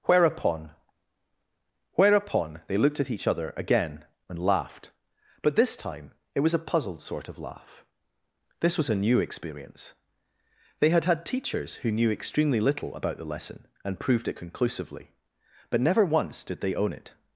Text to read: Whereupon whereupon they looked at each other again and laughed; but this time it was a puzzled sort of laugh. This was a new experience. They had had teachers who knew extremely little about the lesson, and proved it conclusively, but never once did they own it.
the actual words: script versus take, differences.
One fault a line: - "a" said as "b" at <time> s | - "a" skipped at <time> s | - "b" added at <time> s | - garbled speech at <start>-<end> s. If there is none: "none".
none